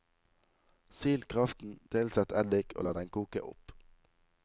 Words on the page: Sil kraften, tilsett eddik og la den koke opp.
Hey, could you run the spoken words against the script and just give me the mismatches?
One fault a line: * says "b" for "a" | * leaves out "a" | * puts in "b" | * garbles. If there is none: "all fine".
all fine